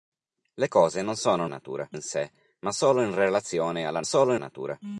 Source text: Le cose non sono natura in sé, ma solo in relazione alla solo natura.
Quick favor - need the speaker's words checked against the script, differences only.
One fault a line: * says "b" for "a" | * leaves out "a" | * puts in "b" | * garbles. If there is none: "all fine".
all fine